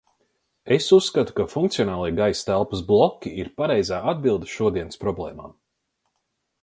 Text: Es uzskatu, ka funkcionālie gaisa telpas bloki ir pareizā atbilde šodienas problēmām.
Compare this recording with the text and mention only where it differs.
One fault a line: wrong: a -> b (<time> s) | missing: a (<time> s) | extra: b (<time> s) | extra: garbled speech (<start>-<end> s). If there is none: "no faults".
no faults